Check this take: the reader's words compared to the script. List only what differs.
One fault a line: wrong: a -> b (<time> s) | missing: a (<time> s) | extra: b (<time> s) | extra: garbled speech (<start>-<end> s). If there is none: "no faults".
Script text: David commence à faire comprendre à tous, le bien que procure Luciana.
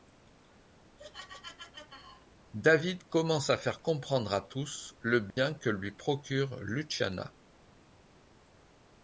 extra: lui (5.7 s)